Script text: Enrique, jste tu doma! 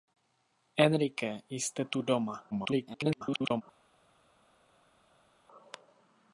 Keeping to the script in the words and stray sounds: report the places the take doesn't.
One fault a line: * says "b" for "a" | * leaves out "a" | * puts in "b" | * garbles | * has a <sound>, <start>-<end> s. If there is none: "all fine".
* garbles